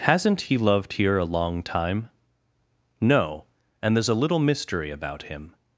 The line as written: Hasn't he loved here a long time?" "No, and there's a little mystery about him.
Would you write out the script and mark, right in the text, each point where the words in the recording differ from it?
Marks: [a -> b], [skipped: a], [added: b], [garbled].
Hasn't he loved here a long time?" "No, and there's a little mystery about him.